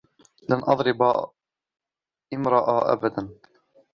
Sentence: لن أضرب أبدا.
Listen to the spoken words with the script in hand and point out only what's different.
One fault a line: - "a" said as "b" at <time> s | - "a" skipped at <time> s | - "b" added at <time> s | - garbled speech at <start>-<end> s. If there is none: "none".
- "امرأة" added at 2.3 s